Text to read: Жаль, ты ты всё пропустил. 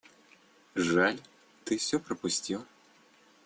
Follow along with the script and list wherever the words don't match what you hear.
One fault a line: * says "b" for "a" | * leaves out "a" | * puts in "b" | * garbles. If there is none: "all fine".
* leaves out "ты"